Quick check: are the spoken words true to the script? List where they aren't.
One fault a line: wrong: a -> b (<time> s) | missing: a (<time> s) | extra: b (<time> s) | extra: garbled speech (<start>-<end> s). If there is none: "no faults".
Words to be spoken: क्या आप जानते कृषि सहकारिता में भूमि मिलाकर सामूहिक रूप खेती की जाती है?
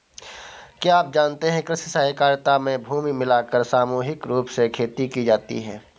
extra: है (1.5 s)
extra: से (4.5 s)